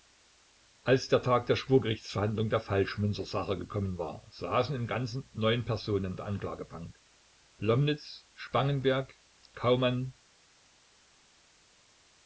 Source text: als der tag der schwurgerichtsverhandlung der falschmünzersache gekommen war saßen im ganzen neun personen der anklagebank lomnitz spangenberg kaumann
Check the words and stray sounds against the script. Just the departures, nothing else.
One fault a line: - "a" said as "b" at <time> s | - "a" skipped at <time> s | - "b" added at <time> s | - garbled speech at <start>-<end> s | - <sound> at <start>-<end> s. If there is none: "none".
none